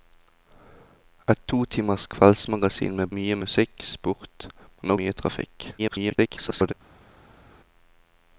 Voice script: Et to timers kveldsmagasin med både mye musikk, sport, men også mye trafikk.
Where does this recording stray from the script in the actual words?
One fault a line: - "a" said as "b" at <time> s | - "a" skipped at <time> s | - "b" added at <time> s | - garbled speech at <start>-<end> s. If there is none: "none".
- "både" skipped at 3.1 s
- "også" skipped at 4.9 s
- garbled speech at 5.8-6.7 s